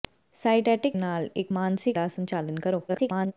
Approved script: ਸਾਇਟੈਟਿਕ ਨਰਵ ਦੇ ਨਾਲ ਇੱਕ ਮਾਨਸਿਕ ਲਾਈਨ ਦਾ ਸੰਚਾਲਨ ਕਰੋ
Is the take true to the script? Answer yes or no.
no